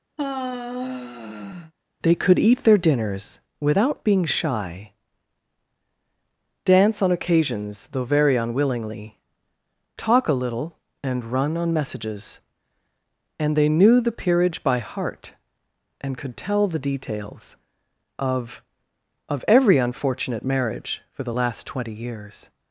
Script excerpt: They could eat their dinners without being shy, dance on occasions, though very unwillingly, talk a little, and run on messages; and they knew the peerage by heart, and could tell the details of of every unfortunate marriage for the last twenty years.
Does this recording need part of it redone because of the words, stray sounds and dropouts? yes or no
yes